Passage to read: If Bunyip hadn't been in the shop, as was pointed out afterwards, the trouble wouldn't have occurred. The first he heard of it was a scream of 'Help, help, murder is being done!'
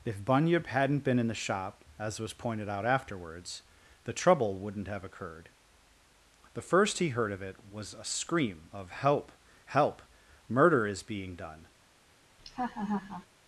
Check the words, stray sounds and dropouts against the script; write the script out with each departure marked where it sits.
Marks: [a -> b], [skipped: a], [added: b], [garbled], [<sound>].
If Bunyip hadn't been in the shop, as was pointed out afterwards, the trouble wouldn't have occurred. The first he heard of it was a scream of 'Help, help, murder is being done!' [laugh]